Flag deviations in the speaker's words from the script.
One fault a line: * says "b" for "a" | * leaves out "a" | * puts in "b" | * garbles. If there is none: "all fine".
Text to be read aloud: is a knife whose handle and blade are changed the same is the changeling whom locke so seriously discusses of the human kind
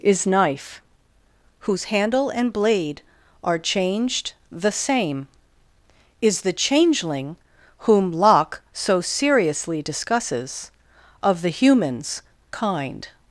* leaves out "a"
* says "humans" for "human"